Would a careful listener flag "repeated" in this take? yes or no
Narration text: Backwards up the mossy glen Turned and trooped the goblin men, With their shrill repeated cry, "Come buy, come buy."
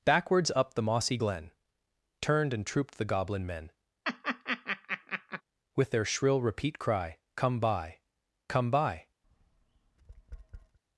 yes